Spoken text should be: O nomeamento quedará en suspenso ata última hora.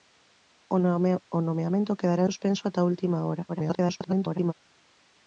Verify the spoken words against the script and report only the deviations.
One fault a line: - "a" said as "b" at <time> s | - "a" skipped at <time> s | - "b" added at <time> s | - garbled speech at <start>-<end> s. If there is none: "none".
- "en" skipped at 2.2 s
- garbled speech at 3.5-4.5 s